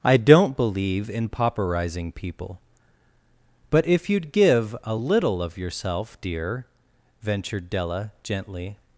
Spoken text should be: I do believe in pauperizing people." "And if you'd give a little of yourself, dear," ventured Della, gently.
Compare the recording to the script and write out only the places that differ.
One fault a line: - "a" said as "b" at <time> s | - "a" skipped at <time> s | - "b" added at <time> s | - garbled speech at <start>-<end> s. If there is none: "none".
- "do" said as "don't" at 0.2 s
- "And" said as "But" at 3.7 s